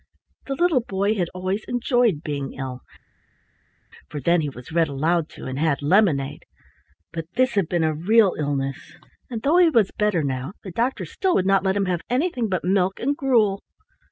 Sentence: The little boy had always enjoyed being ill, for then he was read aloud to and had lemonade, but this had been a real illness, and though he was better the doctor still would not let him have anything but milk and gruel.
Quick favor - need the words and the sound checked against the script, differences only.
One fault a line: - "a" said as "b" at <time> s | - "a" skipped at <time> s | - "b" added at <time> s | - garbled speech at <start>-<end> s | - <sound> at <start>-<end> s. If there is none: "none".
- "now" added at 10.2 s